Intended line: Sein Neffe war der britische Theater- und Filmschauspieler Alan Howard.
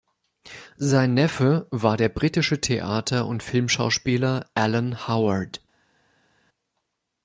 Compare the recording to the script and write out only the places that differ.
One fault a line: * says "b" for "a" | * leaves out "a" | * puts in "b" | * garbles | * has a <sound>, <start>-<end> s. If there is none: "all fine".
all fine